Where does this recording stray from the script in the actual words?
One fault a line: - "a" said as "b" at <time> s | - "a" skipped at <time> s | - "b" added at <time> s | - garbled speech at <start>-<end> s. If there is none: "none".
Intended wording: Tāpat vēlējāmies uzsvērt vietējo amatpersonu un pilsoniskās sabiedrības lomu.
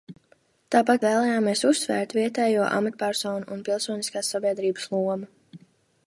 none